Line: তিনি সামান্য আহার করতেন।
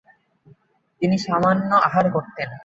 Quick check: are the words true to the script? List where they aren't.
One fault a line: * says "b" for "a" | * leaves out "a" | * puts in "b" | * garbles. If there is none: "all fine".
all fine